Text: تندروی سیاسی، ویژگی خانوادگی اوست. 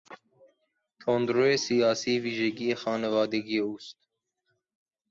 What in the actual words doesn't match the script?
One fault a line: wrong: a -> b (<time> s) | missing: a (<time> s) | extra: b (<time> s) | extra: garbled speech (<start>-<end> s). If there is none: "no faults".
no faults